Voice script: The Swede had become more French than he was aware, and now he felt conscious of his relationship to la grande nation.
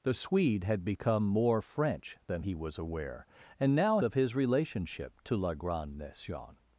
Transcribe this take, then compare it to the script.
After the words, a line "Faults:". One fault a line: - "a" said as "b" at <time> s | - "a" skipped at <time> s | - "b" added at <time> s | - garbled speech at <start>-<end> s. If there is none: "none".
The Swede had become more French than he was aware, and now of his relationship to la grande nation.
Faults:
- "he felt conscious" skipped at 4.0 s